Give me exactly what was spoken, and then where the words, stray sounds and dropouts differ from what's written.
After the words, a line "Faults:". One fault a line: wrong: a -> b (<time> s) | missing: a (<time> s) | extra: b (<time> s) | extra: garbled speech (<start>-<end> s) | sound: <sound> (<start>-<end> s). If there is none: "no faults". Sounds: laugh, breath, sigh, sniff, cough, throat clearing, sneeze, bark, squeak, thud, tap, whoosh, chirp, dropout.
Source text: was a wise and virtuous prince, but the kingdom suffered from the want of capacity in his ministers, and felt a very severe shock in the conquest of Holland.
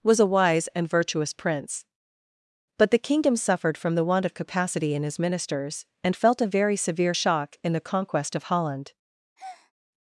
was a wise and virtuous prince, but the kingdom suffered from the want of capacity in his ministers, and felt a very severe shock in the conquest of Holland.
Faults:
sound: breath (9.4-9.7 s)